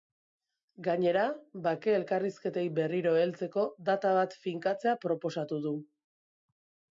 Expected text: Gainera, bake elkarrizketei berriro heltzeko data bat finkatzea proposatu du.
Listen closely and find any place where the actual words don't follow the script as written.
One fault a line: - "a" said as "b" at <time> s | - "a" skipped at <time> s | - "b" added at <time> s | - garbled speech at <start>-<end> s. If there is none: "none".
none